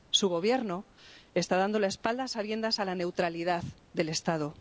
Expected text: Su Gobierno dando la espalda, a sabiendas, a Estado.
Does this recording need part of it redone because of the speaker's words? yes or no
yes